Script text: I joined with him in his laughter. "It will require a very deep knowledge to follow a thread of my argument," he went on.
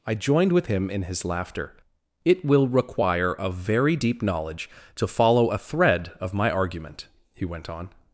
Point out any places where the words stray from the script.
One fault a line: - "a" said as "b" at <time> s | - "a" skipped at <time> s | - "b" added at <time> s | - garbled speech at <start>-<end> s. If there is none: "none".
none